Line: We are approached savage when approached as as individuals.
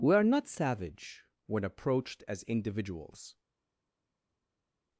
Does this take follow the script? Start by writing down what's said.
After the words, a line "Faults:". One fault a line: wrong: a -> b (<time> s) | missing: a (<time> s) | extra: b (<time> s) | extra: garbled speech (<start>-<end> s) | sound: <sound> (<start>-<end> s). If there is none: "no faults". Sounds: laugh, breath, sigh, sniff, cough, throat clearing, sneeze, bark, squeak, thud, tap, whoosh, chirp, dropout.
We are not savage when approached as individuals.
Faults:
wrong: approached -> not (0.2 s)
missing: as (2.4 s)